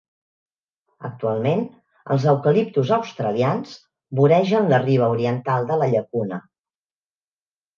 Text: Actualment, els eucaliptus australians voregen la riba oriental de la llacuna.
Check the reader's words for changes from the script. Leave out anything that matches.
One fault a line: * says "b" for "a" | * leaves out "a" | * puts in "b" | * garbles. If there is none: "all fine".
all fine